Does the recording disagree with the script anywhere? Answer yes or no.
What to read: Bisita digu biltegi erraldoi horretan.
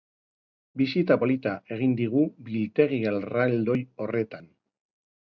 yes